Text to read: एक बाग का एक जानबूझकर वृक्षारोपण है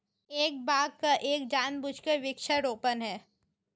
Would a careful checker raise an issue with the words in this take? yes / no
no